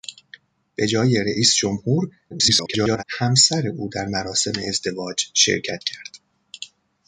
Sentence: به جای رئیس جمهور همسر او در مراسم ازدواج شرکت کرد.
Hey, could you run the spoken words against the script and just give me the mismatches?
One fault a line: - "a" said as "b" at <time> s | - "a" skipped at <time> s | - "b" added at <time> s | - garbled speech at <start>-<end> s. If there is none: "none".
- garbled speech at 2.3-3.0 s